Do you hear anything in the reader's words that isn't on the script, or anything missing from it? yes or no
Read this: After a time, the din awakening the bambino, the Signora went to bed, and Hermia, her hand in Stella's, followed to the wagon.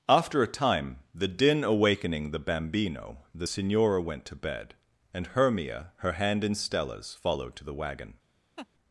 no